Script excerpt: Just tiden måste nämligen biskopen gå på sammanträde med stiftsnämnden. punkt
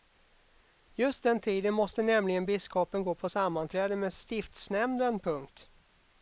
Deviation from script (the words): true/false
true